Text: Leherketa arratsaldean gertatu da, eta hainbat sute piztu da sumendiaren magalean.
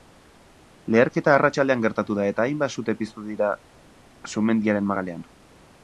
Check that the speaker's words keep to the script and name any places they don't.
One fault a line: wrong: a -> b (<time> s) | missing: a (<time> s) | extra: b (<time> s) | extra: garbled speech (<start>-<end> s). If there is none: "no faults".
wrong: da -> dira (3.3 s)